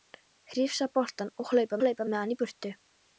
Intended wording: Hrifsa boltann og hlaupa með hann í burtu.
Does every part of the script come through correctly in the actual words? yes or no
no